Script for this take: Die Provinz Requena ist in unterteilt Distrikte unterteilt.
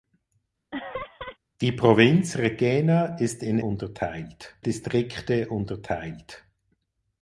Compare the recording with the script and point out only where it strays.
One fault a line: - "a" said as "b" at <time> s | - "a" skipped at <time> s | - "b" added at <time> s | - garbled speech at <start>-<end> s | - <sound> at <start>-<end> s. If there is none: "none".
- laugh at 0.7-1.4 s